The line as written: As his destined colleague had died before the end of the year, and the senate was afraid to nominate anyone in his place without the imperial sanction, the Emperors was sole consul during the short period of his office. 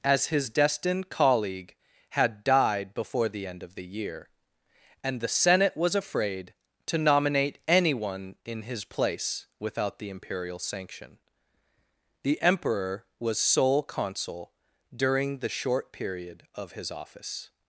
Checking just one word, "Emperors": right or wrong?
wrong